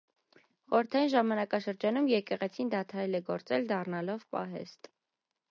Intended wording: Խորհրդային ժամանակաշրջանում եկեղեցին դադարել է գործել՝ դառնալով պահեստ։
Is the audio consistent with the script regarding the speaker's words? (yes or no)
yes